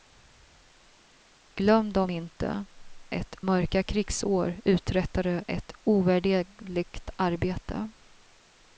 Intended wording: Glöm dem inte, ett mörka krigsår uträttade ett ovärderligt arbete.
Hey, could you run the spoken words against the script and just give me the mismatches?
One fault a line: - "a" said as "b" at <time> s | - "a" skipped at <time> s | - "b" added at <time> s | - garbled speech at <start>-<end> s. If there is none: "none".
none